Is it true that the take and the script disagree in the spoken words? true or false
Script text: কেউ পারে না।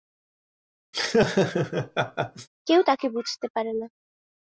true